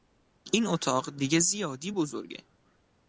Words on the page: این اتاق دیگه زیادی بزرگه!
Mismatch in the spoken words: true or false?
false